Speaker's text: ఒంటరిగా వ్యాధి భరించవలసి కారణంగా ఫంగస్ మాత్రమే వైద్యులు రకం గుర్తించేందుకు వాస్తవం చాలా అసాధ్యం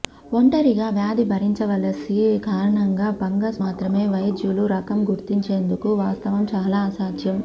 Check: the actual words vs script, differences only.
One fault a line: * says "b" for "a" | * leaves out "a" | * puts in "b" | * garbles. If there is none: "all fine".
all fine